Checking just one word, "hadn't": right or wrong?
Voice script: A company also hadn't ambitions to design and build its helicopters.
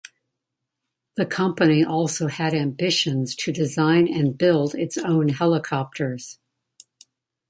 wrong